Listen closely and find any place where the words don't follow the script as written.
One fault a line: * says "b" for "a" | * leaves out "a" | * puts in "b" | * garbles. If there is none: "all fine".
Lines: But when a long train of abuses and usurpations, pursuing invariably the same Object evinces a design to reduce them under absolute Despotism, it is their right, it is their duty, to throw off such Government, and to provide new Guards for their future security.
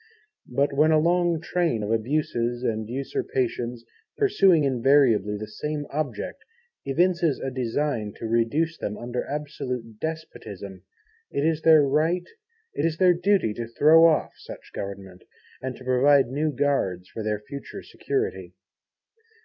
all fine